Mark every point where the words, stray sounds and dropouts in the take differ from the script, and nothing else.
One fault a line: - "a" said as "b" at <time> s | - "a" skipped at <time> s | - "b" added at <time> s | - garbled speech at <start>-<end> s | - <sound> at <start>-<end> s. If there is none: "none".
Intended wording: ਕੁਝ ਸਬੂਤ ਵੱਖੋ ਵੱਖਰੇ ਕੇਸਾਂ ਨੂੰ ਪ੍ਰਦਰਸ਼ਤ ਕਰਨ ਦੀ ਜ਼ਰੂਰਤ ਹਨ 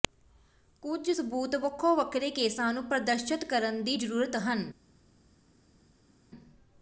none